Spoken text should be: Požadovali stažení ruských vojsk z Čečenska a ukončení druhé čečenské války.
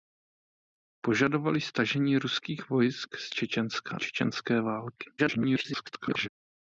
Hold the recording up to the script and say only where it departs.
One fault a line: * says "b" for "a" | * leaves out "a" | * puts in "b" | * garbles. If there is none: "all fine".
* leaves out "a ukončení druhé"
* garbles